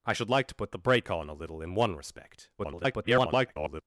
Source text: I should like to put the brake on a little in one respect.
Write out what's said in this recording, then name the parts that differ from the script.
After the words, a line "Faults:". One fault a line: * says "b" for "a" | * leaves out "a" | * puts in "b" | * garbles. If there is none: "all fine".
I should like to put the brake on a little in one respect. [garbled]
Faults:
* garbles